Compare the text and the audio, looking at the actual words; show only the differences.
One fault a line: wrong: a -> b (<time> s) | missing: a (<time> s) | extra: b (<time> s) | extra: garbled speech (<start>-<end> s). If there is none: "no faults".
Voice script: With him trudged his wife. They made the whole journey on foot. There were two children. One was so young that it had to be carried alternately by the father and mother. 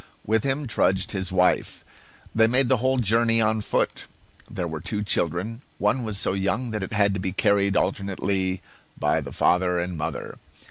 no faults